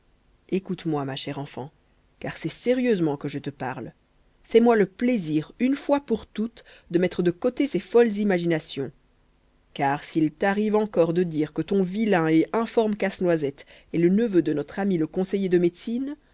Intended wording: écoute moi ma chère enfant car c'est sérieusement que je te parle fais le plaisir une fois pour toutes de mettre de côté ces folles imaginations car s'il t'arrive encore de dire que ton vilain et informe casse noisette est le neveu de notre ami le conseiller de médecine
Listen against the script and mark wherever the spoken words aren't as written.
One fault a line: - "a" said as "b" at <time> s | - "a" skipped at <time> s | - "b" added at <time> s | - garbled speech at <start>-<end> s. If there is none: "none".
- "moi" added at 4.6 s